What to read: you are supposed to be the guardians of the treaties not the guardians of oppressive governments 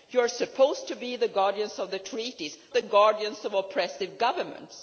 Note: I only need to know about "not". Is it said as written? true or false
false